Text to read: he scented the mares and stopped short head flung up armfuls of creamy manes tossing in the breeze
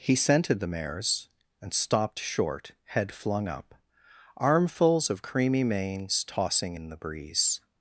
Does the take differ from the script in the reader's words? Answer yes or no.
no